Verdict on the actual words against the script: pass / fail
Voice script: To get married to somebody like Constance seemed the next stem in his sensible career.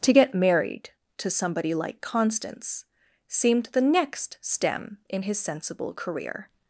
pass